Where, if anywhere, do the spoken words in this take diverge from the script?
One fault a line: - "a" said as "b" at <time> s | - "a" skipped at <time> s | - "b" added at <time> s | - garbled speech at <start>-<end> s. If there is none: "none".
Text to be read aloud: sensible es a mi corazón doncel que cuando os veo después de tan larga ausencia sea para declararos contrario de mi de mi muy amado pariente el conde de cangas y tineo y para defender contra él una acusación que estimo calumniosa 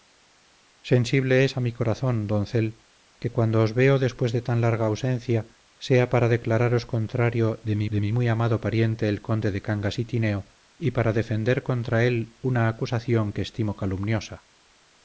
none